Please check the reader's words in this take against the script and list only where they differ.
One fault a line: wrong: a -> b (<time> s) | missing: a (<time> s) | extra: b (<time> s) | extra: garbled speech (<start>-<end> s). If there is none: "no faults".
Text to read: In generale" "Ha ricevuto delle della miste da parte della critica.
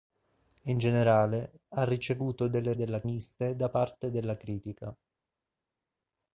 no faults